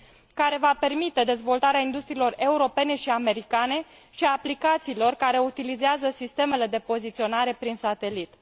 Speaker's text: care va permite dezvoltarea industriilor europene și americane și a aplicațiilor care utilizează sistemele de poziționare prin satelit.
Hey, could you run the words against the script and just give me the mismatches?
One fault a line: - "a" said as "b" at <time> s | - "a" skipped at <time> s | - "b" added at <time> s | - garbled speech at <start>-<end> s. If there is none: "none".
none